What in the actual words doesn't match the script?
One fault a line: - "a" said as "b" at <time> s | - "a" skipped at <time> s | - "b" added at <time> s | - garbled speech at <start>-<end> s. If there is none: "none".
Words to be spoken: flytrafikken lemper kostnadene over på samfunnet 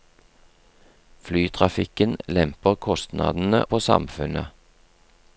- "over" skipped at 3.6 s